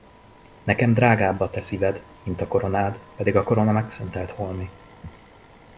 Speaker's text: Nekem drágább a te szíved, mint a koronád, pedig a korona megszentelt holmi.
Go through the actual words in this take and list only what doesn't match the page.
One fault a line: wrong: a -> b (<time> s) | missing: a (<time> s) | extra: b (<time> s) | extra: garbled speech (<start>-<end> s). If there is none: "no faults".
no faults